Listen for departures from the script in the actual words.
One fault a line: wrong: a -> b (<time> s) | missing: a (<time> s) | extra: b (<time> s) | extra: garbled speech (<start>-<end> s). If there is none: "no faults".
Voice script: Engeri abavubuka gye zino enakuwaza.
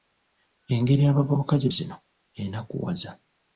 no faults